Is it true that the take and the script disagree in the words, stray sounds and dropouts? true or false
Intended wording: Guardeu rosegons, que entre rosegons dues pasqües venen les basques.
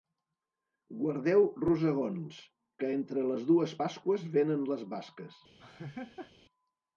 true